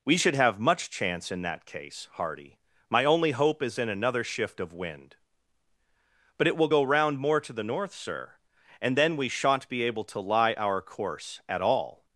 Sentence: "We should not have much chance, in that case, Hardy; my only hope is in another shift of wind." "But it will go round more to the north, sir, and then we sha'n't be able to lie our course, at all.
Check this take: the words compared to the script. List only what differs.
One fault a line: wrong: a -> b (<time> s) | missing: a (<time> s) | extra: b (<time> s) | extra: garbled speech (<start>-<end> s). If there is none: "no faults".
missing: not (0.3 s)